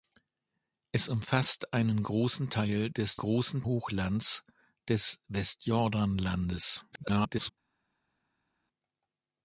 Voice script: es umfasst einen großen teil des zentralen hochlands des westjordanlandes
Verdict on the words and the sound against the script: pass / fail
fail